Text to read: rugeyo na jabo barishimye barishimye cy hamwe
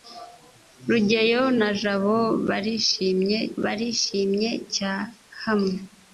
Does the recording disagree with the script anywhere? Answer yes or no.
no